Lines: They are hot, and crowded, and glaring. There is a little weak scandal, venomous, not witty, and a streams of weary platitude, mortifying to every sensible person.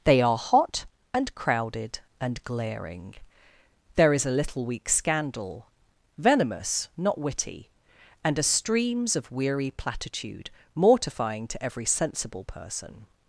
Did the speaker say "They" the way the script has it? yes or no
yes